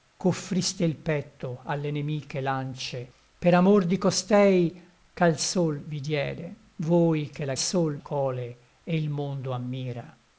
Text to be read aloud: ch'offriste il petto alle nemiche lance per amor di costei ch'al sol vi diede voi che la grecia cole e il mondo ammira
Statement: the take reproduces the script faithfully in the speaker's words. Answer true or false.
false